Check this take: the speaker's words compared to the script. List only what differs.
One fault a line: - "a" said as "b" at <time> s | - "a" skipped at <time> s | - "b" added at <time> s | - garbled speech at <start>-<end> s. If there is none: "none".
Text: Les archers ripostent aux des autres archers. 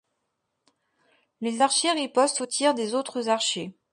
- "tirs" added at 2.5 s